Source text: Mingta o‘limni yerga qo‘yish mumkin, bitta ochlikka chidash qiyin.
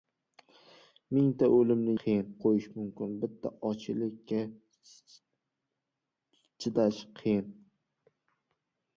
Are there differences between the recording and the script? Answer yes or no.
yes